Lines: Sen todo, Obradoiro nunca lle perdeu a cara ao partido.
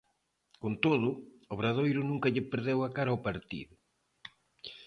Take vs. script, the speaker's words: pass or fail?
fail